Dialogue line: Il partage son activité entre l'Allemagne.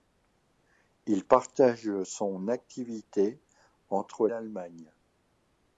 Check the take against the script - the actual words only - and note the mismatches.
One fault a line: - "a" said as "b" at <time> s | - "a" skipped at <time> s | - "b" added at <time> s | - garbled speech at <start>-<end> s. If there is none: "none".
none